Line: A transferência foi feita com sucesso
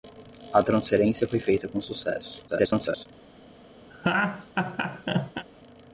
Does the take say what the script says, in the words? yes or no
no